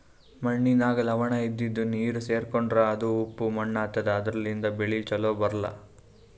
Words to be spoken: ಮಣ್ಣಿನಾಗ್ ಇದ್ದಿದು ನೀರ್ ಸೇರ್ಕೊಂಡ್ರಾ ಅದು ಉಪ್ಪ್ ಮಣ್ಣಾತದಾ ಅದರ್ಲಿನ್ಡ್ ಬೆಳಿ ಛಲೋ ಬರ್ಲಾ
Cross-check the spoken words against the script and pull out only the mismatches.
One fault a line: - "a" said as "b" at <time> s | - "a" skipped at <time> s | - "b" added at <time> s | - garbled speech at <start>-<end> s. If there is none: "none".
- "ಲವಣ" added at 1.0 s